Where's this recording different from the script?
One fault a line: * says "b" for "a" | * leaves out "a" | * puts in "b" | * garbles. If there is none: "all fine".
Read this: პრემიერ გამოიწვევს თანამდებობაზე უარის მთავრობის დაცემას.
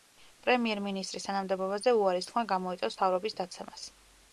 * says "მინისტრის" for "გამოიწვევს"
* puts in "თქმა გამოიწვევს"